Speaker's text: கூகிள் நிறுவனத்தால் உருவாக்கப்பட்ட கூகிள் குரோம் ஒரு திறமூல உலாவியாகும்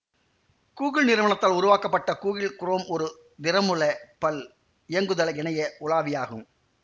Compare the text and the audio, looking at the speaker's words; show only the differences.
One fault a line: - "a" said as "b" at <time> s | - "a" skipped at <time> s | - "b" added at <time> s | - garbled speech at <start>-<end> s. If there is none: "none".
- "பல் இயங்குதள இணைய" added at 4.2 s